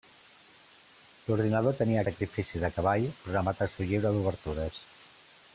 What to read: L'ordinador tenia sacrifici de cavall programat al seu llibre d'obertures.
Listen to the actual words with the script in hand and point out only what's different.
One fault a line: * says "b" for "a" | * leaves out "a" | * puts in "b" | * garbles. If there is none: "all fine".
all fine